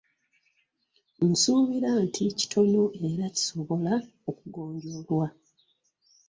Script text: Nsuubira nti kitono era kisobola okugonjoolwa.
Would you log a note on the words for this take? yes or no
no